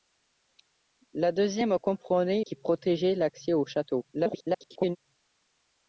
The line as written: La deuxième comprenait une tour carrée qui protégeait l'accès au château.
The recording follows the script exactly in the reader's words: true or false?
false